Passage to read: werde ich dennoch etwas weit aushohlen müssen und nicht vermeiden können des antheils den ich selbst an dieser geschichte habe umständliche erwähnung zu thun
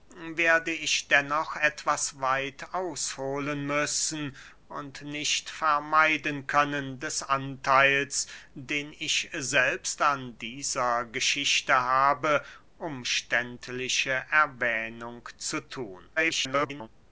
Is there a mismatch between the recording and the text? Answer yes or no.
yes